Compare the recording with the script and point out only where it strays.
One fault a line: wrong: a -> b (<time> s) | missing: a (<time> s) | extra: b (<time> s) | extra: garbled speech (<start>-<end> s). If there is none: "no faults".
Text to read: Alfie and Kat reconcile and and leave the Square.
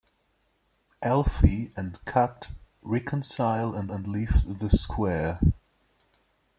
no faults